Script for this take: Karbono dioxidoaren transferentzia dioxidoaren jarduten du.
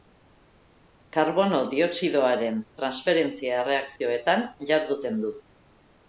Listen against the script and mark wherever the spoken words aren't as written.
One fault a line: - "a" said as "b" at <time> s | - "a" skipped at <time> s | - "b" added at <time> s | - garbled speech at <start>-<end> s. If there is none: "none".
- "dioxidoaren" said as "erreakzioetan" at 3.6 s